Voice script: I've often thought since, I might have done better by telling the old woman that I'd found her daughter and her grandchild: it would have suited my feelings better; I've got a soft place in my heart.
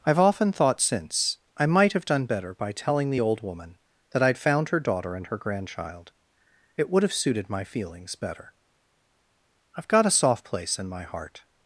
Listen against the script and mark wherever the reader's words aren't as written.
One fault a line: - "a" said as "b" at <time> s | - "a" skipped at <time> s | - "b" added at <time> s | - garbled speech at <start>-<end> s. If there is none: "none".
none